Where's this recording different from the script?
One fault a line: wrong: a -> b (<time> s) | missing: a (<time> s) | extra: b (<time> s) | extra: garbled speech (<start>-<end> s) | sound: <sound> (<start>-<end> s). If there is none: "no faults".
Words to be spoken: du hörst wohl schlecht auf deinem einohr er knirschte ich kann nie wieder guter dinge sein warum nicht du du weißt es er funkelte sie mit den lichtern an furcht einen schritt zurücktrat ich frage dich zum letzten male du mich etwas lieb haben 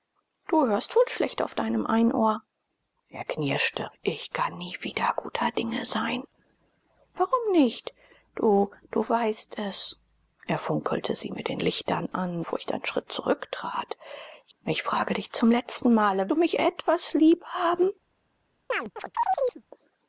sound: chirp (18.7-19.6 s)